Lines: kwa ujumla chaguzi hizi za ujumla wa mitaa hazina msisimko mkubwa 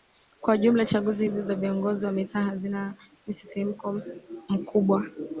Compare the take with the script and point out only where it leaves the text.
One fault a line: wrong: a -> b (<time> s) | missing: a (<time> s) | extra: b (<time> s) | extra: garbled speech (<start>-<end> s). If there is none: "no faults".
wrong: ujumla -> viongozi (1.5 s)